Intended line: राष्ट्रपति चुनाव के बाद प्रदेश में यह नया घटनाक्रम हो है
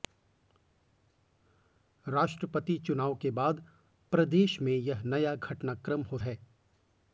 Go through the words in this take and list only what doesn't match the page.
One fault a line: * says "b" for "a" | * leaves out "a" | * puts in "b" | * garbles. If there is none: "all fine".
all fine